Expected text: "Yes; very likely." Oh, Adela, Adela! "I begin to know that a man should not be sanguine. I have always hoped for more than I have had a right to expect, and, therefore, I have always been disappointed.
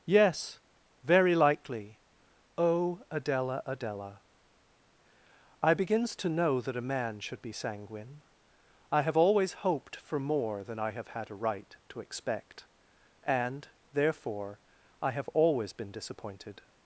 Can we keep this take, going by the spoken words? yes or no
no